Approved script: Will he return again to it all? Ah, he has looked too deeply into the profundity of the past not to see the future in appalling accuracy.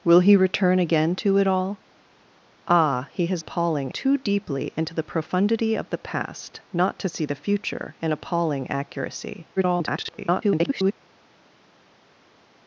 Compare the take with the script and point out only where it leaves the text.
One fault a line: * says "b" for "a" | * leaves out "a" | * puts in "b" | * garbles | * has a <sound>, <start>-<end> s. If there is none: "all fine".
* says "appalling" for "looked"
* garbles